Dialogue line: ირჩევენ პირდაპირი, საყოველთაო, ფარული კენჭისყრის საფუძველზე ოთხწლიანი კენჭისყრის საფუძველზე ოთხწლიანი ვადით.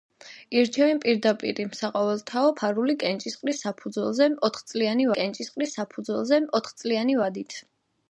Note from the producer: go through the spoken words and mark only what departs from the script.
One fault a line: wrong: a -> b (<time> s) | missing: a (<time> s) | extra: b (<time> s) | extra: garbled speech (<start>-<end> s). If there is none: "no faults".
no faults